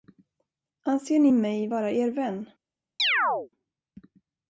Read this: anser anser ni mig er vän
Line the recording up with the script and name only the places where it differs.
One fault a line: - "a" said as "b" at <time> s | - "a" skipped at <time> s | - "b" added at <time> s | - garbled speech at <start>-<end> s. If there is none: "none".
- "anser" skipped at 1.2 s
- "vara" added at 1.7 s